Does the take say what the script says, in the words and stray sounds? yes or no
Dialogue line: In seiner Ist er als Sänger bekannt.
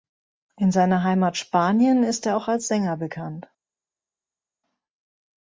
no